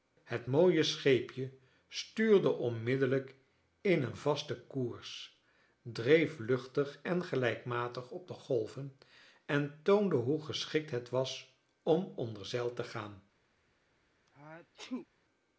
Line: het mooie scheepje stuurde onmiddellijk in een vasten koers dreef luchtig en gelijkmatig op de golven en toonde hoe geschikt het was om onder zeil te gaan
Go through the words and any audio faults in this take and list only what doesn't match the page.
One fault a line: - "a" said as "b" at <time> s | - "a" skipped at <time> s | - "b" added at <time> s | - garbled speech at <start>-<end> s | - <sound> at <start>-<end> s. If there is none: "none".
- sneeze at 14.3-15.1 s